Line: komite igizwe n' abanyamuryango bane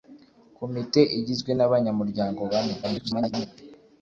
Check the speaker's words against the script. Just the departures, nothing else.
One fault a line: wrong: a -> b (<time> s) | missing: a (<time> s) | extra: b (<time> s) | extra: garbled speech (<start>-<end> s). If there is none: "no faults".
extra: garbled speech (2.8-3.5 s)